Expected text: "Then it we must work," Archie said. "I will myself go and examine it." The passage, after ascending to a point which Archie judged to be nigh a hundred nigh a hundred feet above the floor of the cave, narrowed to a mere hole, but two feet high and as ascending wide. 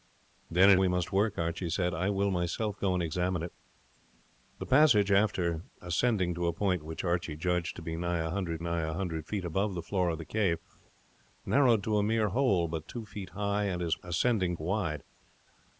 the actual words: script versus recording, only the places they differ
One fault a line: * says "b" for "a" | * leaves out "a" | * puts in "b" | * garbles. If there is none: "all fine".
all fine